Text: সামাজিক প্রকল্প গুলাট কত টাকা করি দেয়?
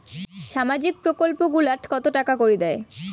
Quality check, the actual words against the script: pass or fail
pass